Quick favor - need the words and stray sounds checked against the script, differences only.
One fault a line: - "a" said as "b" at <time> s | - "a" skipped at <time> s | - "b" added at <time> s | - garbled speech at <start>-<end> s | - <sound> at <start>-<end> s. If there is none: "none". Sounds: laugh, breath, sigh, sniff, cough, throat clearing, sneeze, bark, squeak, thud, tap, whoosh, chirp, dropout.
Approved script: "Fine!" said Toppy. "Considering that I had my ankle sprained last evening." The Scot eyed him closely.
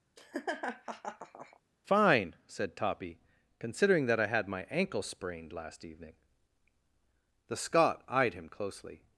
- laugh at 0.2-1.6 s